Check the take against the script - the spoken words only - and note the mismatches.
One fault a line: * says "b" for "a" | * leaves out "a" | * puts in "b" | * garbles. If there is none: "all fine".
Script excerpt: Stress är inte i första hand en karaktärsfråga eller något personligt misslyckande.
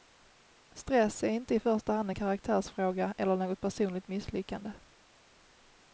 all fine